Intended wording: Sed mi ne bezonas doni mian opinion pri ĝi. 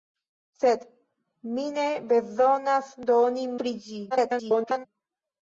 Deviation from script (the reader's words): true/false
true